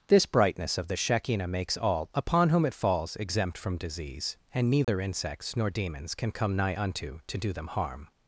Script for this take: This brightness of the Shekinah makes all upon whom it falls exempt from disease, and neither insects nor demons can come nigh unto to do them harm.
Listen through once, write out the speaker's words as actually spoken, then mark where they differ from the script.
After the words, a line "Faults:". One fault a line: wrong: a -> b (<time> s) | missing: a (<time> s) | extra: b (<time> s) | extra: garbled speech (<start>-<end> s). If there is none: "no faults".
This brightness of the Shekinah makes all upon whom it falls exempt from disease, and neither insects nor demons can come nigh unto to do them harm.
Faults:
no faults